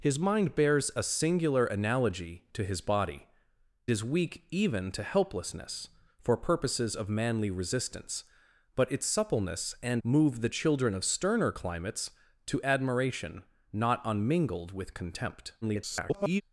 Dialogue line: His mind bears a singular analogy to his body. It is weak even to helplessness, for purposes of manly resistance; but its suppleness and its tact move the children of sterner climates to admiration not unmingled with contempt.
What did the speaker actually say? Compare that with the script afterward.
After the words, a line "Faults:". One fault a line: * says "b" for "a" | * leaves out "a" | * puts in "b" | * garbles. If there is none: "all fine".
His mind bears a singular analogy to his body. Is weak even to helplessness, for purposes of manly resistance; but its suppleness and move the children of sterner climates to admiration not unmingled with contempt. [garbled]
Faults:
* leaves out "It"
* leaves out "its tact"
* garbles